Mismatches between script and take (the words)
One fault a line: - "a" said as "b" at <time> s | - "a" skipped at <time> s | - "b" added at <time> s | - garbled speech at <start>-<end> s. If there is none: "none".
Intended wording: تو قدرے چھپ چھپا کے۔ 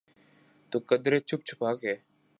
none